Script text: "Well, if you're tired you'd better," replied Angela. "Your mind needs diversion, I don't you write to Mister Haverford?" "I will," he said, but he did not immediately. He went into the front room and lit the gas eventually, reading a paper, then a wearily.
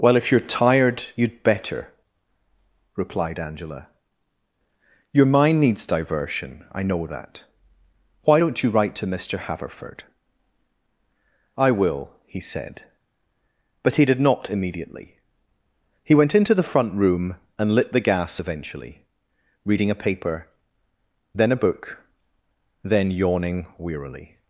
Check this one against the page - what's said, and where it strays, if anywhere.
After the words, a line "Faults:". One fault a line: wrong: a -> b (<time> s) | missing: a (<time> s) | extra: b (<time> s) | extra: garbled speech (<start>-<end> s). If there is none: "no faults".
"Well, if you're tired you'd better," replied Angela. "Your mind needs diversion, I know that. Why don't you write to Mister Haverford?" "I will," he said, but he did not immediately. He went into the front room and lit the gas eventually, reading a paper, then a book, then yawning wearily.
Faults:
extra: know that Why (6.8 s)
extra: book then yawning (21.6 s)